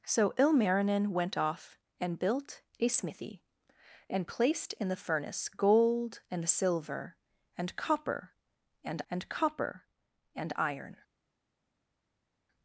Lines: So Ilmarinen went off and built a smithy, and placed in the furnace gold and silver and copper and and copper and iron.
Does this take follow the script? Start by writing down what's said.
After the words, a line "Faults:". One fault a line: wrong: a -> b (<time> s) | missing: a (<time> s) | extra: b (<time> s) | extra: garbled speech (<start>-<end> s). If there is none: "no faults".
So Ilmarinen went off and built a smithy, and placed in the furnace gold and silver and copper and and copper and iron.
Faults:
no faults